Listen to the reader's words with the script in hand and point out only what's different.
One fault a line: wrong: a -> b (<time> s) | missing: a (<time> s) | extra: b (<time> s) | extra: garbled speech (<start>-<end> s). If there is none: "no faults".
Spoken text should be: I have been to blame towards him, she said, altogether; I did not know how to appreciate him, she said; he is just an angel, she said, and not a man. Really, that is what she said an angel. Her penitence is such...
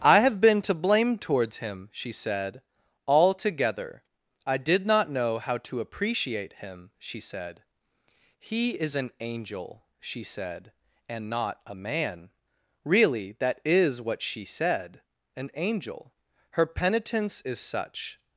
missing: just (8.9 s)